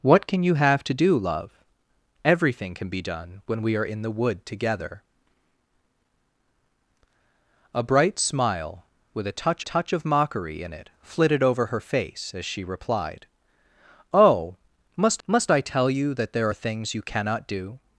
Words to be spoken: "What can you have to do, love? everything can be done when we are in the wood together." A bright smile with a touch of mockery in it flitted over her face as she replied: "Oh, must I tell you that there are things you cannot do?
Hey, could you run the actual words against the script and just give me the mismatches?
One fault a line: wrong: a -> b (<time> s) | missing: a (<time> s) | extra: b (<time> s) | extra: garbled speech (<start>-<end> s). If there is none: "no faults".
extra: touch (9.6 s)
extra: must (15.3 s)